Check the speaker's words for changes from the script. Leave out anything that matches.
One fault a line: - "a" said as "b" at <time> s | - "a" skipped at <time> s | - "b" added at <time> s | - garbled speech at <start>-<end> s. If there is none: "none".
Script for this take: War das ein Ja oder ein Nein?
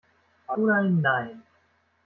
- "das ein Ja" skipped at 0.6 s